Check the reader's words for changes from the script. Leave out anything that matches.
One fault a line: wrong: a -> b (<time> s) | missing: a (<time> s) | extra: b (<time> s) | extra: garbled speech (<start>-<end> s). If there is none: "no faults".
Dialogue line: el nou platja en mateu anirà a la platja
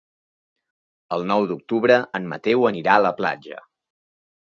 wrong: platja -> d'octubre (1.5 s)